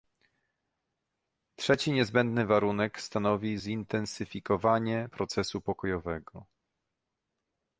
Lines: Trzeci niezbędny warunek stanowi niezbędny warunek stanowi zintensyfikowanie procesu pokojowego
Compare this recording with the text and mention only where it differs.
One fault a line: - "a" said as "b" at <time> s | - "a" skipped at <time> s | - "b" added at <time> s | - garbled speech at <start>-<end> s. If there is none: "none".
- "niezbędny warunek stanowi" skipped at 3.6 s